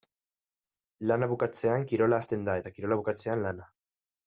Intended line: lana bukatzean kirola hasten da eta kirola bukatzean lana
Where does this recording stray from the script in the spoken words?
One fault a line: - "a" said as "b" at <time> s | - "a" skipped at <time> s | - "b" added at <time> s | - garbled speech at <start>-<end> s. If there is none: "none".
none